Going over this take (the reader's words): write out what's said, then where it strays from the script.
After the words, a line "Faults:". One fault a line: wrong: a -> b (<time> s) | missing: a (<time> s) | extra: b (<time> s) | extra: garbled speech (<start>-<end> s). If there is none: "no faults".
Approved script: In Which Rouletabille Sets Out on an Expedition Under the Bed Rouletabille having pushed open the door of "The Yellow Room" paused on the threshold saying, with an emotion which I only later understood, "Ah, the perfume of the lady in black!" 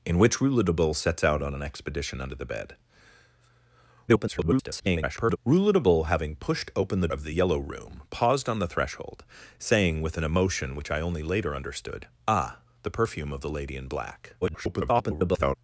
In Which Rouletabille Sets Out on an Expedition Under the Bed [garbled] Rouletabille having pushed open the of "The Yellow Room" paused on the threshold saying, with an emotion which I only later understood, "Ah, the perfume of the lady in black!" [garbled]
Faults:
extra: garbled speech (4.1-5.4 s)
missing: door (7.1 s)
extra: garbled speech (14.4-15.6 s)